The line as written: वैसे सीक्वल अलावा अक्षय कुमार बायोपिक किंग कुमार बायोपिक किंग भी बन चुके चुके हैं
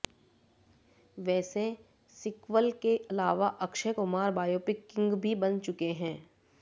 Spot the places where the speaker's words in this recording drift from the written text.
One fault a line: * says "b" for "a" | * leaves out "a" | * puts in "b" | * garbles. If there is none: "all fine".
* puts in "के"
* leaves out "कुमार बायोपिक किंग"
* leaves out "चुके"